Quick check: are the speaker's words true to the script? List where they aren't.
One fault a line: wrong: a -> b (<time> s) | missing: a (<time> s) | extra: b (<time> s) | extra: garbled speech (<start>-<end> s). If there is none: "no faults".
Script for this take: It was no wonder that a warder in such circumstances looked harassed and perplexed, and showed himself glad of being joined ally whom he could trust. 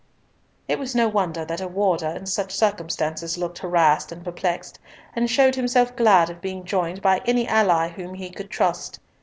extra: by any (7.0 s)